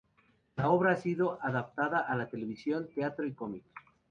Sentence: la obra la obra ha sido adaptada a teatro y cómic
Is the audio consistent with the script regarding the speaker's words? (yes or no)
no